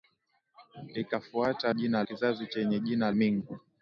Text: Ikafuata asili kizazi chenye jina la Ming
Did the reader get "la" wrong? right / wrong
wrong